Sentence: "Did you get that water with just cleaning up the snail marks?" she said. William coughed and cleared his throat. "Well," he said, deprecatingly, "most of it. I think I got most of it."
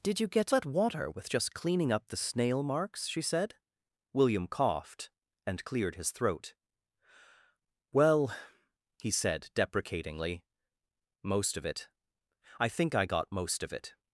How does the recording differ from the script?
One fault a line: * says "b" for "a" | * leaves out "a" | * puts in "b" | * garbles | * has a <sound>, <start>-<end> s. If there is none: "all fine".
all fine